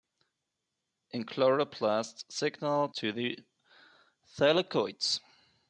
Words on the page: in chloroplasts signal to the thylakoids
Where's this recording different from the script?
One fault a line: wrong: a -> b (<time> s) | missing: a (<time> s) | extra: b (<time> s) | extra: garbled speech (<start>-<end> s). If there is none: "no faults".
no faults